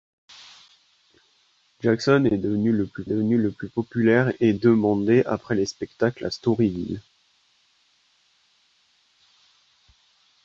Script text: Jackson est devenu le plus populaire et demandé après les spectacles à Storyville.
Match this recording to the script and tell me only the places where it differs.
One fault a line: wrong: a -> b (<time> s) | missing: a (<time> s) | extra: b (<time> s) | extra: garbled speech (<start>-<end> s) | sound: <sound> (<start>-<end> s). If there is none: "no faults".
extra: devenu le plus (3.0 s)